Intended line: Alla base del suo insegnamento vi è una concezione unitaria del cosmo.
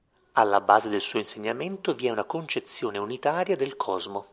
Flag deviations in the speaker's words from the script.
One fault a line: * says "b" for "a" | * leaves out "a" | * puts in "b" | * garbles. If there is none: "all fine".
all fine